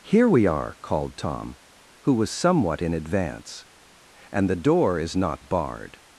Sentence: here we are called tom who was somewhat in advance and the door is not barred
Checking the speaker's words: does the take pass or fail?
pass